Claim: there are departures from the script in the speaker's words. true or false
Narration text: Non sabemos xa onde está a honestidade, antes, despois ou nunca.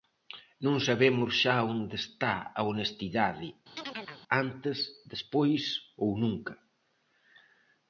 false